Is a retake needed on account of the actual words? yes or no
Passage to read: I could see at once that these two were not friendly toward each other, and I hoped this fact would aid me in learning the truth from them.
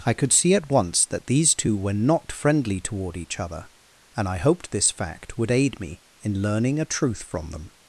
yes